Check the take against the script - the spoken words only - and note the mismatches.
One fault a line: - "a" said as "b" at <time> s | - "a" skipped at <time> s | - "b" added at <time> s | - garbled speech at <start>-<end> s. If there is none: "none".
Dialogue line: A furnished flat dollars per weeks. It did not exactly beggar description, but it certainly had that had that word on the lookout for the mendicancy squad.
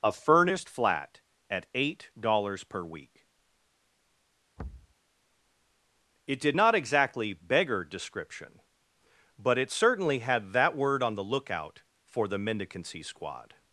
- "at eight" added at 1.5 s
- "weeks" said as "week" at 2.8 s
- "had that" skipped at 10.8 s